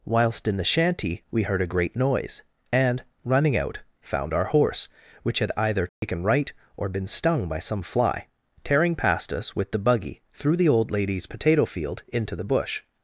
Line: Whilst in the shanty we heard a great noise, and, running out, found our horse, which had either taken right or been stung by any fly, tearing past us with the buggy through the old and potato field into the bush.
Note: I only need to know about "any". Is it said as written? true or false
false